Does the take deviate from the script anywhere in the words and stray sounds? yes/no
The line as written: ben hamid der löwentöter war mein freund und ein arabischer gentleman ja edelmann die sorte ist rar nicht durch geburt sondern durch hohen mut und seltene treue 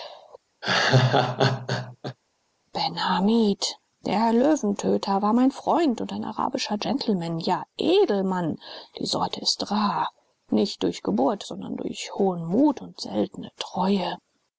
yes